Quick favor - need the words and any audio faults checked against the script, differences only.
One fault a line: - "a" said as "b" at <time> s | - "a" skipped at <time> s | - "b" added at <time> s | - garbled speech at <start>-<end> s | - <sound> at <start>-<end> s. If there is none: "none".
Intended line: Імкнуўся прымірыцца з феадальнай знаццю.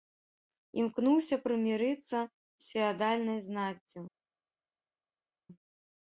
none